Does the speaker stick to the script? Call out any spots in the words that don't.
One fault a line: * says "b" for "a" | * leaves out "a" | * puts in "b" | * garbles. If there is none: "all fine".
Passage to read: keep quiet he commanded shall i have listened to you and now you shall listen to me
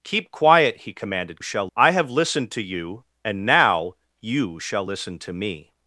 all fine